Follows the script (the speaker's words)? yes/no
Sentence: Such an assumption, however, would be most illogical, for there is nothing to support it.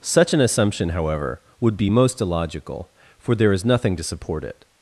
yes